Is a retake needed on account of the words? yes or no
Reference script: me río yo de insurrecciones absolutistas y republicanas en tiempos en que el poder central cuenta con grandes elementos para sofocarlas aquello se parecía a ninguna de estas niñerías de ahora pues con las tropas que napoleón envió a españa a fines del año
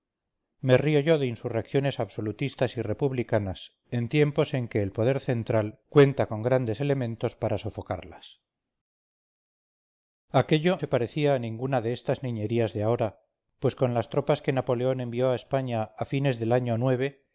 no